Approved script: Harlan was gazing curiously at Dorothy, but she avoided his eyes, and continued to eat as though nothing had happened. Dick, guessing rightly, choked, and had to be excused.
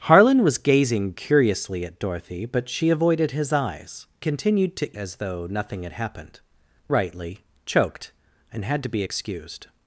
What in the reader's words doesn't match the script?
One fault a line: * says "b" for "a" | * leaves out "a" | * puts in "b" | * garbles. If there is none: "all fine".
* leaves out "and"
* leaves out "eat"
* leaves out "Dick guessing"